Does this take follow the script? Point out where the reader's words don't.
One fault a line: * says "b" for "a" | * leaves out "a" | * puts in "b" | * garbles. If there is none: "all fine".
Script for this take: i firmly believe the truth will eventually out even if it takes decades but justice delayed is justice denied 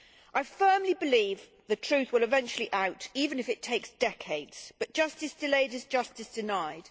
all fine